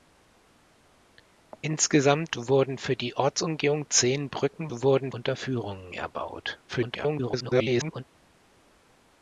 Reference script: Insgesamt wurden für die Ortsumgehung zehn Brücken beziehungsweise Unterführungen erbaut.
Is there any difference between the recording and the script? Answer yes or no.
yes